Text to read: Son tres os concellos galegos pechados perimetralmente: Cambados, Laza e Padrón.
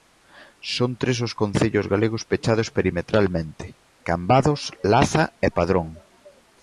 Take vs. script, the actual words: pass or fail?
pass